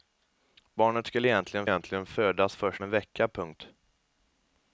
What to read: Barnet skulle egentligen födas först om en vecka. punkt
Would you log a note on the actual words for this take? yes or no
yes